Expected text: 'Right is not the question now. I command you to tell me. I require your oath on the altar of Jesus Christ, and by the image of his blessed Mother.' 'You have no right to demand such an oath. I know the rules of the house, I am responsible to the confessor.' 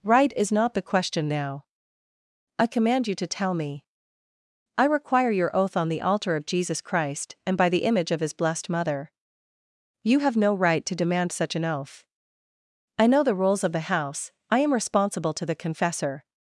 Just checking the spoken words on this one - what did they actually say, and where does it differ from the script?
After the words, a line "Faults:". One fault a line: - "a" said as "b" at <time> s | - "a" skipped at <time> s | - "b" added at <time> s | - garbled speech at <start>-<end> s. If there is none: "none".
'Right is not the question now. I command you to tell me. I require your oath on the altar of Jesus Christ, and by the image of his blessed Mother.' 'You have no right to demand such an oath. I know the rules of the house, I am responsible to the confessor.'
Faults:
none